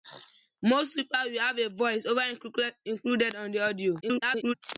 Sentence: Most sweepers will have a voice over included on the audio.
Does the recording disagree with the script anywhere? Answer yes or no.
yes